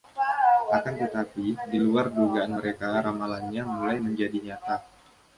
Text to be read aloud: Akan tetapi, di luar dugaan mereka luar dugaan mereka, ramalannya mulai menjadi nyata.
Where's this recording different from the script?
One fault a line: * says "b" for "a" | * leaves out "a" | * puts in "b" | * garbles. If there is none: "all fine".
* leaves out "luar dugaan mereka"